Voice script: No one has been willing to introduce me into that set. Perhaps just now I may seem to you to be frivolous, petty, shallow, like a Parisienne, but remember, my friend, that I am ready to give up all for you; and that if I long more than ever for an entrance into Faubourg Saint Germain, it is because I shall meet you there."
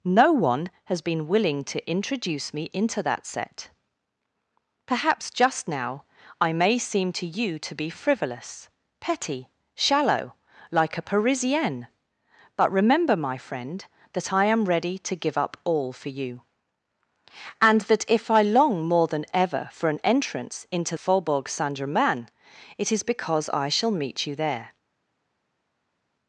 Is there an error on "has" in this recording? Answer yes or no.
no